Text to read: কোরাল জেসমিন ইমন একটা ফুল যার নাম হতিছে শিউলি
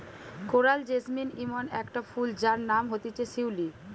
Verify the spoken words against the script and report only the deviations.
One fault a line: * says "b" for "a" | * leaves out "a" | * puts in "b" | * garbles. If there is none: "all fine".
all fine